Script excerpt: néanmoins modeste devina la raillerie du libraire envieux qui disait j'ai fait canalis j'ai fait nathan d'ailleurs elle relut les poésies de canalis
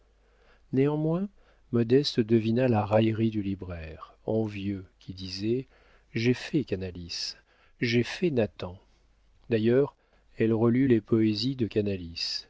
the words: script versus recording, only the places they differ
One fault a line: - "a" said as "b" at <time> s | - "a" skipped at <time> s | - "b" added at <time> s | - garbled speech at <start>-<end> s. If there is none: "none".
none